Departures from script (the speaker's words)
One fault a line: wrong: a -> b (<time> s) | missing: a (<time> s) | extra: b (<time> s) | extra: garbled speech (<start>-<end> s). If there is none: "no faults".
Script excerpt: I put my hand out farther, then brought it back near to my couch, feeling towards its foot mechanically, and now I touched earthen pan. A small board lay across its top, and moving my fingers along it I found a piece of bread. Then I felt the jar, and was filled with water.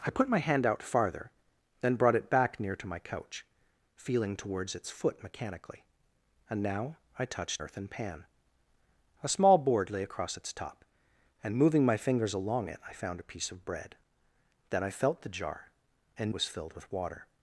no faults